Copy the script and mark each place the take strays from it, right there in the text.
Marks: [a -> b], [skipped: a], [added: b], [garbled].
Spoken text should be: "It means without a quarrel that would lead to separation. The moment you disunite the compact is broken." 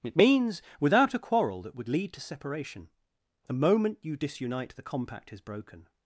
"It means without a quarrel that would lead to separation. The moment you disunite the compact is broken."